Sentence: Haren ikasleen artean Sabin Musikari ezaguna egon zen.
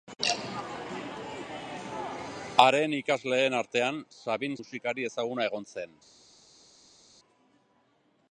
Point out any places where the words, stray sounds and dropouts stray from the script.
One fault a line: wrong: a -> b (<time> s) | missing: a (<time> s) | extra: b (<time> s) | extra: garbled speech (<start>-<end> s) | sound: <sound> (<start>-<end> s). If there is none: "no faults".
no faults